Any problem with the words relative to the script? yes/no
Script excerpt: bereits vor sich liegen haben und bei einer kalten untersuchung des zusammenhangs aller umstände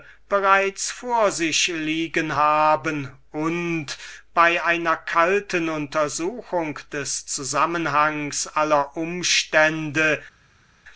no